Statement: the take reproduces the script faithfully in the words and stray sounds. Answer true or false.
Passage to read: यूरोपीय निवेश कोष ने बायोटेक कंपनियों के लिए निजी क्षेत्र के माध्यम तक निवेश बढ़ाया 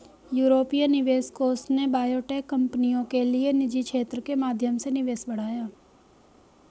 false